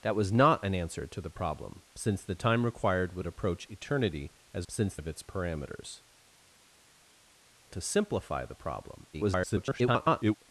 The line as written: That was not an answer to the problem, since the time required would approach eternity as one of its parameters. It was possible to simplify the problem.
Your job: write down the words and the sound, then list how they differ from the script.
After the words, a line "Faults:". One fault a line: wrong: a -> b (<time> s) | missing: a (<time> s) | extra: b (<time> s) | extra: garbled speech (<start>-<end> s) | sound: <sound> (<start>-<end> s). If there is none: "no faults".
That was not an answer to the problem, since the time required would approach eternity as since of its parameters. To simplify the problem. [garbled]
Faults:
wrong: one -> since (4.7 s)
missing: It was possible (6.0 s)
extra: garbled speech (9.1-10.4 s)